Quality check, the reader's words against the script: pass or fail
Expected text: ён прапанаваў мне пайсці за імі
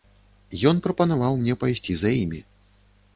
pass